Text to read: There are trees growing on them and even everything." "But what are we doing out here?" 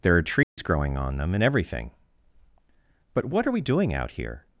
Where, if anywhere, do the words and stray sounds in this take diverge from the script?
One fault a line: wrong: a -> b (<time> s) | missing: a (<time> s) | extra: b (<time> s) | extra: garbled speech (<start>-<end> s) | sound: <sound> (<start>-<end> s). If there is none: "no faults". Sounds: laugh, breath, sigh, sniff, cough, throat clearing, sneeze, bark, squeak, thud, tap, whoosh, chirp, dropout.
sound: dropout (0.4-0.6 s)
missing: even (1.4 s)